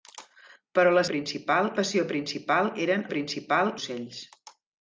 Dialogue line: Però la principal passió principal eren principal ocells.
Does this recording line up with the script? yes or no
yes